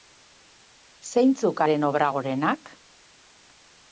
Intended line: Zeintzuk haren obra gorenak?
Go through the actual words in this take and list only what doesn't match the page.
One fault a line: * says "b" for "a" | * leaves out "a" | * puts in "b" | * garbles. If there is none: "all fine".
all fine